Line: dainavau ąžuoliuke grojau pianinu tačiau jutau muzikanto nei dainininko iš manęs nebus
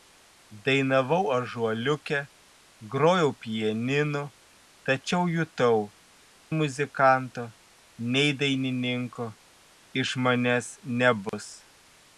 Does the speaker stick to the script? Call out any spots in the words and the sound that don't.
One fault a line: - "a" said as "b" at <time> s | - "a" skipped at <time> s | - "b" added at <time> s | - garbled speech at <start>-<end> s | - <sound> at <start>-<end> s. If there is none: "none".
- dropout at 11.3-11.3 s